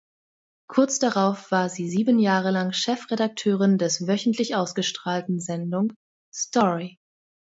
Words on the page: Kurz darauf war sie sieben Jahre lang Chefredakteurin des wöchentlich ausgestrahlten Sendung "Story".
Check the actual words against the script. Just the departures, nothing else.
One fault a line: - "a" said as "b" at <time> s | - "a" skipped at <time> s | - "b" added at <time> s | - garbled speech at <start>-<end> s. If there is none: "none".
none